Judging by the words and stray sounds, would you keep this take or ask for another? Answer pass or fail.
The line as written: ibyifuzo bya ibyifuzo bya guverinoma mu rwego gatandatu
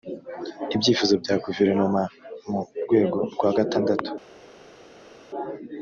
fail